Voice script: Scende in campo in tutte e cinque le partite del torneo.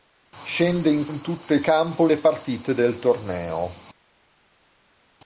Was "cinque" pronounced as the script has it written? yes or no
no